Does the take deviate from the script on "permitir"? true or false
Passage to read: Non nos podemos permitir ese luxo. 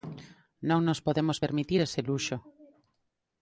false